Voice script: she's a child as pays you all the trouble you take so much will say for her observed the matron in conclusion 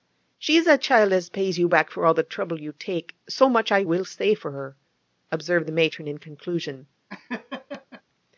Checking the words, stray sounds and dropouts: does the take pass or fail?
fail